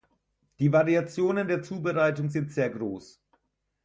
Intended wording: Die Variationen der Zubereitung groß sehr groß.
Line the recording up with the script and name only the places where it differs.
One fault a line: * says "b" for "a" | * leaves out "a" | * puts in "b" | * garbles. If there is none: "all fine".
* says "sind" for "groß"